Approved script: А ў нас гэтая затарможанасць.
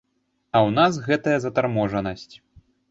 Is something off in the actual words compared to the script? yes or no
no